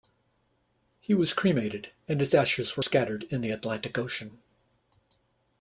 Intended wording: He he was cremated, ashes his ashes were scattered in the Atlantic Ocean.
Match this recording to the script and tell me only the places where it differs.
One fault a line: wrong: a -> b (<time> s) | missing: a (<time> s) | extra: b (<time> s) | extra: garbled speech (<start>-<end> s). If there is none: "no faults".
missing: he (1.1 s)
wrong: ashes -> and (2.1 s)